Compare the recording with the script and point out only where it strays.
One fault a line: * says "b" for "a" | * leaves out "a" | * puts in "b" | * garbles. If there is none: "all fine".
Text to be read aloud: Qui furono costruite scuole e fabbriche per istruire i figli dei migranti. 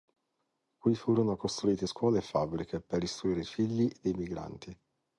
all fine